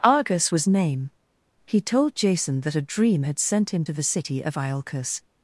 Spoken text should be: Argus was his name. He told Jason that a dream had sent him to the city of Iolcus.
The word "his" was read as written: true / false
false